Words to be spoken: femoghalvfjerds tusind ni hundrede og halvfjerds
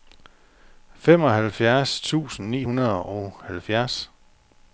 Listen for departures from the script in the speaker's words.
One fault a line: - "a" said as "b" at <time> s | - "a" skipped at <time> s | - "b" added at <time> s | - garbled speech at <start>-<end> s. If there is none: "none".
none